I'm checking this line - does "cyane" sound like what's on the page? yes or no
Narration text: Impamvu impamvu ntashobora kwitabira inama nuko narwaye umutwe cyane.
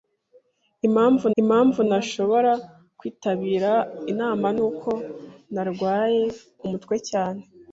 yes